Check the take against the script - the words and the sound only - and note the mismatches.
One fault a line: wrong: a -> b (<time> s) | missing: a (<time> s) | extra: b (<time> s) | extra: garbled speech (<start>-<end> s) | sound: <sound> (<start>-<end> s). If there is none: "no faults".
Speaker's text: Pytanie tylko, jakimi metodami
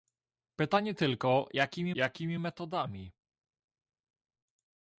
extra: jakimi (1.9 s)